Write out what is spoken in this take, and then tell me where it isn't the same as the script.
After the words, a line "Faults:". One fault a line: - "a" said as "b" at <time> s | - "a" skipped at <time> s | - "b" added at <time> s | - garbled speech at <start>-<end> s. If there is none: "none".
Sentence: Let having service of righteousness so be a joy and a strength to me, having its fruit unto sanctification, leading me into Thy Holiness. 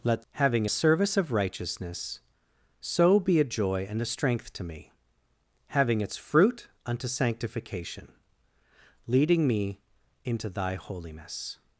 Let having service of righteousness so be a joy and a strength to me, having its fruit unto sanctification, leading me into Thy Holiness.
Faults:
none